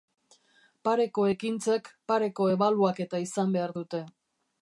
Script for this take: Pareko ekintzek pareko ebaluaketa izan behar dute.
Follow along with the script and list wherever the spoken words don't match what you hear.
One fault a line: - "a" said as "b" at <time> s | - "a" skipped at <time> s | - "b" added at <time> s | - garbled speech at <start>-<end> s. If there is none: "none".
none